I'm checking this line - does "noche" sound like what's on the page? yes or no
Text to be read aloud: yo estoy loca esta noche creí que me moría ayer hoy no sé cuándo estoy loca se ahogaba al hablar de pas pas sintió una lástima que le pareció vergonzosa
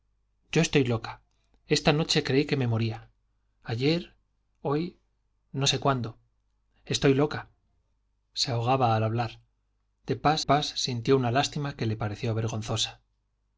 yes